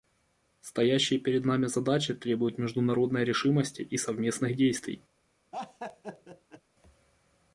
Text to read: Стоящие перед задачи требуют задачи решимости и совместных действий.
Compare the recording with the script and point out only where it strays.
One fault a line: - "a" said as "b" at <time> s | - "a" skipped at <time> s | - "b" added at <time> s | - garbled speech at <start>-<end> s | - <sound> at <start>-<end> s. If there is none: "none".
- "нами" added at 1.4 s
- "задачи" said as "международной" at 2.6 s
- laugh at 5.5-6.6 s